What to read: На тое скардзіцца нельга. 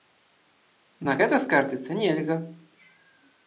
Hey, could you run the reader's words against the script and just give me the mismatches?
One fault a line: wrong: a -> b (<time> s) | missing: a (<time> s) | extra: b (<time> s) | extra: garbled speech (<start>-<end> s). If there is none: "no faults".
wrong: тое -> гэта (1.2 s)